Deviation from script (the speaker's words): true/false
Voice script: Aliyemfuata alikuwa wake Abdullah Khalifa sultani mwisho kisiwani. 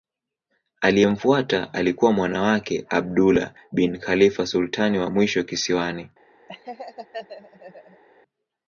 true